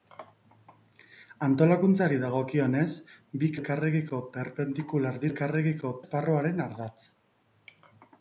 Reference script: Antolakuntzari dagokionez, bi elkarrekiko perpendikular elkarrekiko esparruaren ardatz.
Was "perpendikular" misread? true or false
false